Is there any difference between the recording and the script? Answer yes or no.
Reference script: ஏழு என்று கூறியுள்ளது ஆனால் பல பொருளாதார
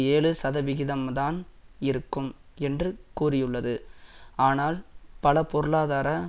yes